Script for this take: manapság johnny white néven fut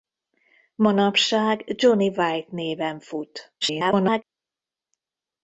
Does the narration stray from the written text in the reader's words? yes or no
yes